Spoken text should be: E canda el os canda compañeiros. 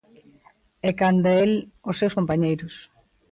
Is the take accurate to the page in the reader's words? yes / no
no